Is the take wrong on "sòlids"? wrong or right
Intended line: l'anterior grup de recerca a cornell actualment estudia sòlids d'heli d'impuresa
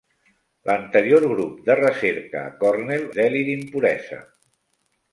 wrong